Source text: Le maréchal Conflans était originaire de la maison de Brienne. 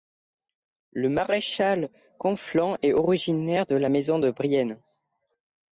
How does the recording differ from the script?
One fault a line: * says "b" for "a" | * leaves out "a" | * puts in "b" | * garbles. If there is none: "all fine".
* says "est" for "était"